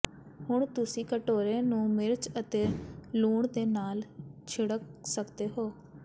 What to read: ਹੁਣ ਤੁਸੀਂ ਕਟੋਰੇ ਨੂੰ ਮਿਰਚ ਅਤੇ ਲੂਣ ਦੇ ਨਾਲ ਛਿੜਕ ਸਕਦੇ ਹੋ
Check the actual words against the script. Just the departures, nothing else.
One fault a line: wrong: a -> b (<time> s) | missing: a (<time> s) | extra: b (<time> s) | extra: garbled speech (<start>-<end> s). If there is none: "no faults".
no faults